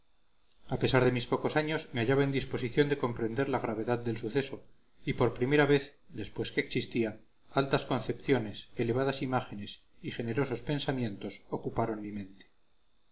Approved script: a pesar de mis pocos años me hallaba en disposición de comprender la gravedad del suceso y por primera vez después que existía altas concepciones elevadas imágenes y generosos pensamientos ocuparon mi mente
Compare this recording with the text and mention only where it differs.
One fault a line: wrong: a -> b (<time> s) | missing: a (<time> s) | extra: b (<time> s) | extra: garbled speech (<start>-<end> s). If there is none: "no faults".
no faults